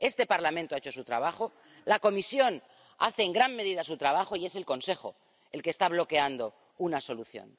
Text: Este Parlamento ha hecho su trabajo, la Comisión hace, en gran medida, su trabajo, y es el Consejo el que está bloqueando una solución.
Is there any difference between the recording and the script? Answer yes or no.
no